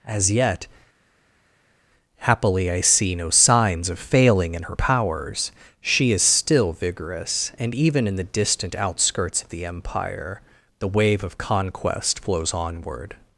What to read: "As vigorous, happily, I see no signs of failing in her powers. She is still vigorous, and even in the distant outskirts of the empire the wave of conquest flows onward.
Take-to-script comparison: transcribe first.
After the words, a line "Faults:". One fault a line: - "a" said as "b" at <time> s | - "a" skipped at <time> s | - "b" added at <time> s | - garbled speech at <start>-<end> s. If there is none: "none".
"As yet, happily, I see no signs of failing in her powers. She is still vigorous, and even in the distant outskirts of the empire the wave of conquest flows onward.
Faults:
- "vigorous" said as "yet" at 0.3 s